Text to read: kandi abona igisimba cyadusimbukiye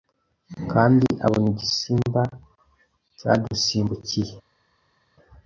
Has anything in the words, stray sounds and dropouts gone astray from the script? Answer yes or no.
no